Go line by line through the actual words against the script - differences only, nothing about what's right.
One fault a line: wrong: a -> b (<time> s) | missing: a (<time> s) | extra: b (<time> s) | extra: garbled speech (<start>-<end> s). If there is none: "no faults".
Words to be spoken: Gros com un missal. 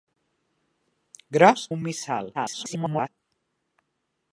missing: com (1.7 s)
extra: garbled speech (2.3-3.1 s)